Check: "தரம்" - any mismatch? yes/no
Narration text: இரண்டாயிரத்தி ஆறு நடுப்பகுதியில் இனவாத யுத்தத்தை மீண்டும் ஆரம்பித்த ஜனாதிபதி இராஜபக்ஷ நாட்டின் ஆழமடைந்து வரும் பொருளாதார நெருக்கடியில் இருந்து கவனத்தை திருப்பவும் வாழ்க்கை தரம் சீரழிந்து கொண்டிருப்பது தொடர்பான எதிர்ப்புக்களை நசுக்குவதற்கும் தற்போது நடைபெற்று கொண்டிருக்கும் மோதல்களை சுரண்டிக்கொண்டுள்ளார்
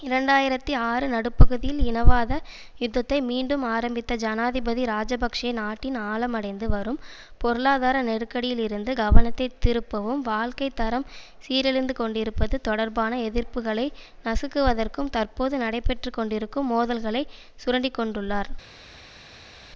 no